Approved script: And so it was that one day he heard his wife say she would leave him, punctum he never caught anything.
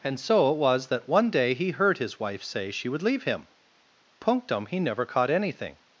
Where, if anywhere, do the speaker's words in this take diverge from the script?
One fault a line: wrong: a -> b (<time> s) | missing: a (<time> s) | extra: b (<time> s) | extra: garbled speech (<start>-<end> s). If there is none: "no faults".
no faults